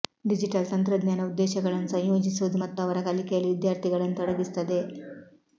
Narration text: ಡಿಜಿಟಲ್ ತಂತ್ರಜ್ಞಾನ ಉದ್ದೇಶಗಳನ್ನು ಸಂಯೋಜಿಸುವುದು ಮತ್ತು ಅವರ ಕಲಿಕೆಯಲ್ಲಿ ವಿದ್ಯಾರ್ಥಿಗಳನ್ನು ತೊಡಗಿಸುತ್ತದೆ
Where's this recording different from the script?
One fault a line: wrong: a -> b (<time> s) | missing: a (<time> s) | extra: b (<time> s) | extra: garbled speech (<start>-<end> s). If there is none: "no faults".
no faults